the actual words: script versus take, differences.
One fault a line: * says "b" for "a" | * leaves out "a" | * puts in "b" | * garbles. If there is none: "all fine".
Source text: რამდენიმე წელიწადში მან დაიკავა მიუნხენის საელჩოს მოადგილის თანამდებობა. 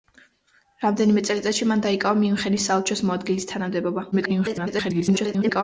* garbles